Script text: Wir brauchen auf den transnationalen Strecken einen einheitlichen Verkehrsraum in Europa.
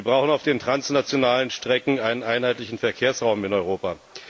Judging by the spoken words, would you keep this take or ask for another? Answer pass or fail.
pass